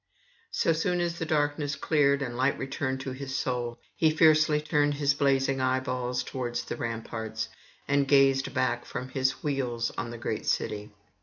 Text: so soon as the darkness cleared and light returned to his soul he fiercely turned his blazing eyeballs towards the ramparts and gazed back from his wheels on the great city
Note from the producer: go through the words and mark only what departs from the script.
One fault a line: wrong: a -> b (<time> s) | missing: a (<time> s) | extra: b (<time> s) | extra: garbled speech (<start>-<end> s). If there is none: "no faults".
no faults